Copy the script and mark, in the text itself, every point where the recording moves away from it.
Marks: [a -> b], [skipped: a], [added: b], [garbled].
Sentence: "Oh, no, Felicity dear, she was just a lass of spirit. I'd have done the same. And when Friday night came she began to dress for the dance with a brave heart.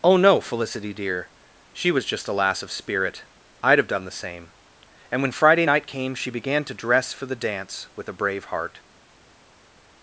"Oh, no, Felicity dear, she was just a lass of spirit. I'd have done the same. And when Friday night came she began to dress for the dance with a brave heart.